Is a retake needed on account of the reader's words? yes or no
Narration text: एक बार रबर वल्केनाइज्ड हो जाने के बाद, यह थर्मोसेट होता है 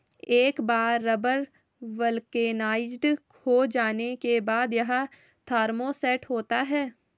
no